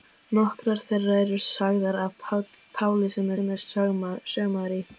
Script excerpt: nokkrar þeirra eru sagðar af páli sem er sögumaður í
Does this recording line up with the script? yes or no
no